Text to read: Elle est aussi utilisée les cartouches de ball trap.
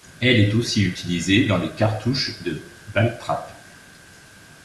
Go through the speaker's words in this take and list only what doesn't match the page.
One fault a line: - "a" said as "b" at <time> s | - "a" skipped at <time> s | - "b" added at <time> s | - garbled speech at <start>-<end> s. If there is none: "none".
- "dans" added at 1.4 s